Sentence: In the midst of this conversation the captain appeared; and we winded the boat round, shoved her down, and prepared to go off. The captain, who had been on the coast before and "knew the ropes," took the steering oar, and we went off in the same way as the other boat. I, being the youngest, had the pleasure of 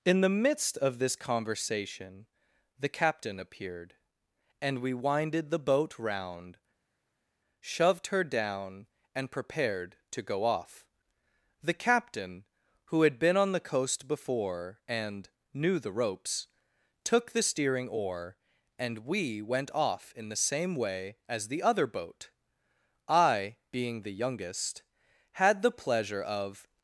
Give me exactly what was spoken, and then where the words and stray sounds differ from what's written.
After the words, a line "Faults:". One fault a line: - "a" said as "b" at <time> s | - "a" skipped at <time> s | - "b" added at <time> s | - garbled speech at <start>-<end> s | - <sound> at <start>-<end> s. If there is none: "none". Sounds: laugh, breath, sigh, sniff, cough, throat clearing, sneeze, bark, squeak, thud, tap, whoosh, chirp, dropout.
In the midst of this conversation the captain appeared; and we winded the boat round, shoved her down, and prepared to go off. The captain, who had been on the coast before and "knew the ropes," took the steering oar, and we went off in the same way as the other boat. I, being the youngest, had the pleasure of
Faults:
none